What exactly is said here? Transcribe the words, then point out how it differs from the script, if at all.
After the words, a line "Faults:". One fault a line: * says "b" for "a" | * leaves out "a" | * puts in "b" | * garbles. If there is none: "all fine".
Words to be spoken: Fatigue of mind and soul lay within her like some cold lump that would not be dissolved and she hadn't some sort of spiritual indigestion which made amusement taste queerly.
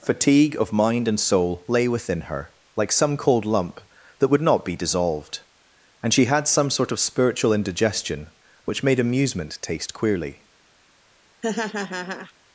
Fatigue of mind and soul lay within her like some cold lump that would not be dissolved and she had some sort of spiritual indigestion which made amusement taste queerly.
Faults:
* says "had" for "hadn't"